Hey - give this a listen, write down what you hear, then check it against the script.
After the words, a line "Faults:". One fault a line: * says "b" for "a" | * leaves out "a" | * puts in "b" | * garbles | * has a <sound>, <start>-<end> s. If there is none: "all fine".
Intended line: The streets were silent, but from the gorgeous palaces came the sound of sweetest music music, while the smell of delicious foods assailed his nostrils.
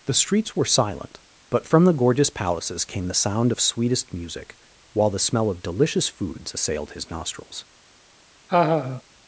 The streets were silent, but from the gorgeous palaces came the sound of sweetest music, while the smell of delicious foods assailed his nostrils.
Faults:
* leaves out "music"
* has a laugh, 8.5-9.0 s